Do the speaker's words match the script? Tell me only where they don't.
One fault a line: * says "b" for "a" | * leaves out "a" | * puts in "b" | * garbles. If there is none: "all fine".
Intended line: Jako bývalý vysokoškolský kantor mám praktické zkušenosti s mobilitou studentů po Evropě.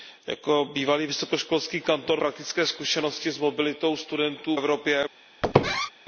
* leaves out "mám"
* leaves out "po"